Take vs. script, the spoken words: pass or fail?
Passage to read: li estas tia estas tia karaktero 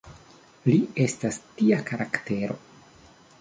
fail